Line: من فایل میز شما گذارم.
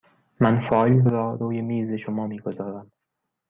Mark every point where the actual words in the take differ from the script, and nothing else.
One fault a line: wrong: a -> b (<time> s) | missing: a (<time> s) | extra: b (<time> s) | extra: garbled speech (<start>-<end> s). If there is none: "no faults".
extra: را روی (1.1 s)
extra: می (2.2 s)